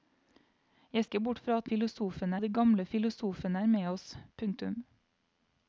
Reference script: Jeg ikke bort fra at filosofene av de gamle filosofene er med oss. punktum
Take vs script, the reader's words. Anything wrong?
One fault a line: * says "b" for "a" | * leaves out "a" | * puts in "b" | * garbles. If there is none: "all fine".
all fine